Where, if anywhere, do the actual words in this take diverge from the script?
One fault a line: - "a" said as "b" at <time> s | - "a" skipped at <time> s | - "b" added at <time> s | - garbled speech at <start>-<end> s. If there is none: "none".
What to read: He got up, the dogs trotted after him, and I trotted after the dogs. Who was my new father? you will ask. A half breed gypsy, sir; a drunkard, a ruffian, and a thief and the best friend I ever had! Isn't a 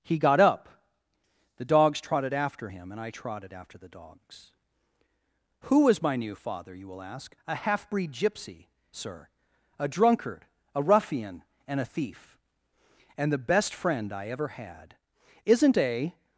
none